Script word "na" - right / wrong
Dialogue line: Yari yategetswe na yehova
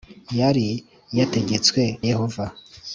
wrong